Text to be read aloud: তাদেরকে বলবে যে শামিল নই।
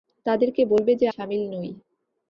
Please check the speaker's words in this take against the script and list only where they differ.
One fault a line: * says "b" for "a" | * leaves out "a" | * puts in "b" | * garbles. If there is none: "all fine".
all fine